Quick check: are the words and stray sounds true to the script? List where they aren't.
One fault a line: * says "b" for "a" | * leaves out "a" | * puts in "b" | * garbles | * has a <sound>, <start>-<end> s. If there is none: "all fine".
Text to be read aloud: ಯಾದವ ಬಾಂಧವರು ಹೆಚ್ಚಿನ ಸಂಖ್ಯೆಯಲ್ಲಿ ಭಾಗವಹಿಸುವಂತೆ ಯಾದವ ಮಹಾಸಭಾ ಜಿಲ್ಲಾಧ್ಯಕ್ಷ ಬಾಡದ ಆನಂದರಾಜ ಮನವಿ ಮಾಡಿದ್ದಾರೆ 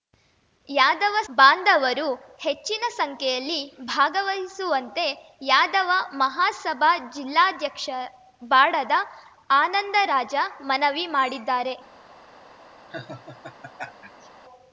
* has a laugh, 12.9-14.3 s